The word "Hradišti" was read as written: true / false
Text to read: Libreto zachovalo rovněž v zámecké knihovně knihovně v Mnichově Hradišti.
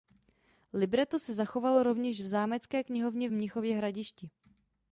true